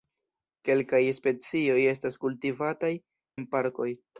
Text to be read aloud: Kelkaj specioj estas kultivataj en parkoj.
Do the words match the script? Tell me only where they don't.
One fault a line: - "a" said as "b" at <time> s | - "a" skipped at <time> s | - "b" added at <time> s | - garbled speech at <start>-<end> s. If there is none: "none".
none